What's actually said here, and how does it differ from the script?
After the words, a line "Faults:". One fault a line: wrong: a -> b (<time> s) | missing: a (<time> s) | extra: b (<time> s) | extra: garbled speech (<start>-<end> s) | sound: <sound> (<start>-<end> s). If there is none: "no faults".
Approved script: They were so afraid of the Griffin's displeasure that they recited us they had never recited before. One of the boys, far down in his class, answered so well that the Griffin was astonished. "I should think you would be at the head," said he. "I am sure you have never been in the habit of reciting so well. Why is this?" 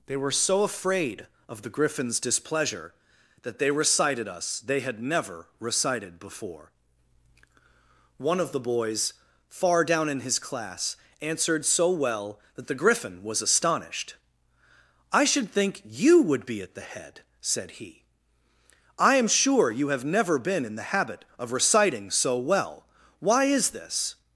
They were so afraid of the Griffin's displeasure that they recited us they had never recited before. One of the boys, far down in his class, answered so well that the Griffin was astonished. "I should think you would be at the head," said he. "I am sure you have never been in the habit of reciting so well. Why is this?"
Faults:
no faults